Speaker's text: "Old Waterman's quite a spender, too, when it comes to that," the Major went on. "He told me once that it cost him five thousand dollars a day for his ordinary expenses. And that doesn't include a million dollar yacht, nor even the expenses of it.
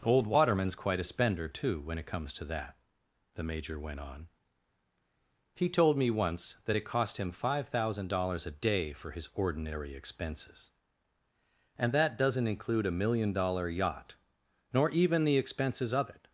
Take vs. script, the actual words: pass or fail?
pass